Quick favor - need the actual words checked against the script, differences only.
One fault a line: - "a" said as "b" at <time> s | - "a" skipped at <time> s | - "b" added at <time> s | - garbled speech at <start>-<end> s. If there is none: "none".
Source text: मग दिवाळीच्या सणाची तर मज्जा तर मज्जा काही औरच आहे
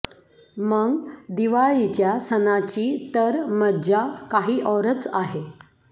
- "तर मज्जा" skipped at 4.0 s